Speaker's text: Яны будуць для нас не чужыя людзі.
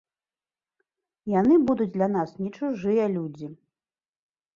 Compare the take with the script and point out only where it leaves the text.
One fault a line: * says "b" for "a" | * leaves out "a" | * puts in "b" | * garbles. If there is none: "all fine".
all fine